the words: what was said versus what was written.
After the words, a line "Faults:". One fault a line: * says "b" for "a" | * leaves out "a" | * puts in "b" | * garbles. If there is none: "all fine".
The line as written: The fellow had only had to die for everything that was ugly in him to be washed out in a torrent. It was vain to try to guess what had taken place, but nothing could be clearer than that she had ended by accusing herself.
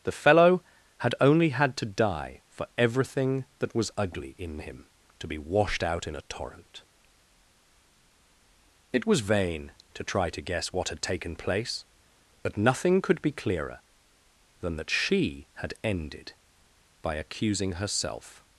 The fellow had only had to die for everything that was ugly in him to be washed out in a torrent. It was vain to try to guess what had taken place, but nothing could be clearer than that she had ended by accusing herself.
Faults:
all fine